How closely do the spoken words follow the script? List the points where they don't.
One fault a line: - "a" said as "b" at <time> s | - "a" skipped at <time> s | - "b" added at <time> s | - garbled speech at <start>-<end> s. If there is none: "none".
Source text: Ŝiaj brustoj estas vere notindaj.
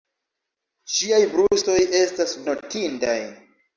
- "vere" skipped at 2.4 s